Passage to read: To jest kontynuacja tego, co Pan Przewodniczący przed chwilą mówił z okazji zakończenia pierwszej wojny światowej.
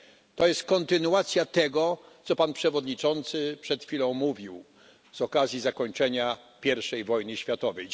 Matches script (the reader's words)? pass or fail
pass